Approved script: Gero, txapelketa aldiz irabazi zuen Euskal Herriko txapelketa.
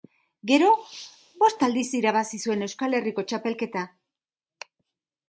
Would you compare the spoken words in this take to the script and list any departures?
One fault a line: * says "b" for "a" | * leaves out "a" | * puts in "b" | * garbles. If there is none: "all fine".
* says "bost" for "txapelketa"